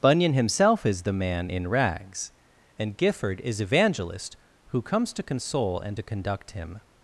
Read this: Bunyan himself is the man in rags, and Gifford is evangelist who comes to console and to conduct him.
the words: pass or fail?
pass